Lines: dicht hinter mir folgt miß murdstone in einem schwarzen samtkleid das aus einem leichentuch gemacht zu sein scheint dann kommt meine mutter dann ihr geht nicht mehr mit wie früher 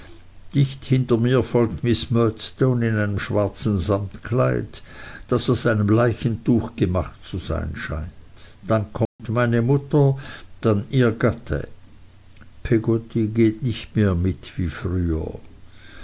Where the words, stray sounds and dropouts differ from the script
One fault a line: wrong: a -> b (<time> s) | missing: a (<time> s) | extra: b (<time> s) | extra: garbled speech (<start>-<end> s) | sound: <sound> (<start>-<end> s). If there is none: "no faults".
sound: dropout (9.1-9.2 s)
extra: gatte peggotty (11.1 s)